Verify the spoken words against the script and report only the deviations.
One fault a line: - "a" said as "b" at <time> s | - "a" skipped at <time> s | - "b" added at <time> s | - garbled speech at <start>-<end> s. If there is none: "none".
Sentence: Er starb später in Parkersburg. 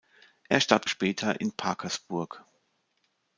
none